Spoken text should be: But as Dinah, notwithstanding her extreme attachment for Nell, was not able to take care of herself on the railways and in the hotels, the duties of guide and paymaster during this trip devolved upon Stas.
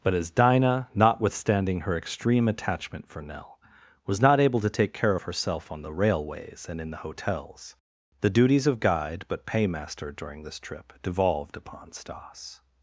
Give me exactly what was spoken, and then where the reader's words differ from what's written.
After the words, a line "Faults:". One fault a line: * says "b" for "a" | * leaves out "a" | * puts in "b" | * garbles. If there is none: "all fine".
But as Dinah, notwithstanding her extreme attachment for Nell, was not able to take care of herself on the railways and in the hotels, the duties of guide but paymaster during this trip devolved upon Stas.
Faults:
* says "but" for "and"